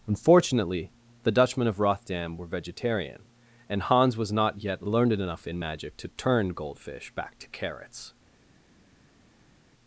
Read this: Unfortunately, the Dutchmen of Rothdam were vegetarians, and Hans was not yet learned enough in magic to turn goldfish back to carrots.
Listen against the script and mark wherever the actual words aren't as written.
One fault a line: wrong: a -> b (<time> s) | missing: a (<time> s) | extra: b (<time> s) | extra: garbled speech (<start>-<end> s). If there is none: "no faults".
wrong: vegetarians -> vegetarian (2.5 s)